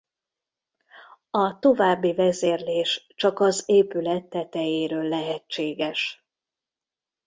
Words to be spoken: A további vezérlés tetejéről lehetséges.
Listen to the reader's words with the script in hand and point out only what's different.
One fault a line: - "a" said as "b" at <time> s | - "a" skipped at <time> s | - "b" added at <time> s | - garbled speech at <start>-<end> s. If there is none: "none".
- "csak az épület" added at 3.1 s